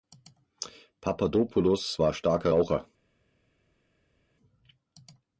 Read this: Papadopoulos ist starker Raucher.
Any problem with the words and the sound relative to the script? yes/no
yes